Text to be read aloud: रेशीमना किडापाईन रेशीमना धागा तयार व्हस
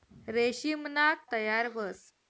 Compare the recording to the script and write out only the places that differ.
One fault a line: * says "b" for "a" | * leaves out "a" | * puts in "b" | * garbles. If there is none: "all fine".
* leaves out "किडापाईन रेशीमना धागा"